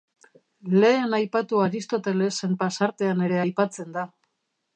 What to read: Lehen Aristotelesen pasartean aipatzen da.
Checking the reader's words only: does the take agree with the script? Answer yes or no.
no